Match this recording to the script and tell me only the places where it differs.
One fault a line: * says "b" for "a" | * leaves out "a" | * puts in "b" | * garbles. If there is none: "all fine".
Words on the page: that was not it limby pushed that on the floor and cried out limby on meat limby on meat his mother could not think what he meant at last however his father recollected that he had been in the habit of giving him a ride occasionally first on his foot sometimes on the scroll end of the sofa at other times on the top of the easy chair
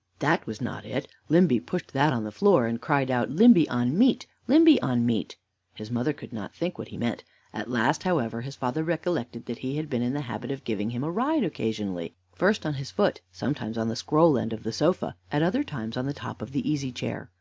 all fine